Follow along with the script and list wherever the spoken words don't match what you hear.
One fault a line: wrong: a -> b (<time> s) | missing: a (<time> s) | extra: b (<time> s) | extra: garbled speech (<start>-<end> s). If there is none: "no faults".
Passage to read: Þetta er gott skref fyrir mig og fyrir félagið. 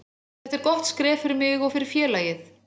no faults